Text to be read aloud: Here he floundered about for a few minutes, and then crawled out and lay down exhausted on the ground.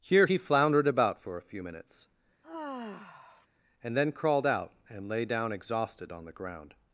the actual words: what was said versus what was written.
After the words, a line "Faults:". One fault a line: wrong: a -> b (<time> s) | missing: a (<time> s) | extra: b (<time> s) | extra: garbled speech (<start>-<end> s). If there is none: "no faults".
Here he floundered about for a few minutes, and then crawled out and lay down exhausted on the ground.
Faults:
no faults